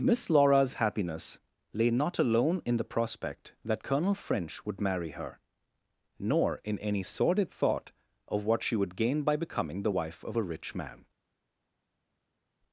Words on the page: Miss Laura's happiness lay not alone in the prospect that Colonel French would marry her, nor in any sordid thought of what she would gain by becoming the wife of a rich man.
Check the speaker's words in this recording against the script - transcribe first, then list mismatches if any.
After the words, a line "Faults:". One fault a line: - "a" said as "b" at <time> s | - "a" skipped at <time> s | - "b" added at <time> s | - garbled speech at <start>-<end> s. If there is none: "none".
Miss Laura's happiness lay not alone in the prospect that Colonel French would marry her, nor in any sordid thought of what she would gain by becoming the wife of a rich man.
Faults:
none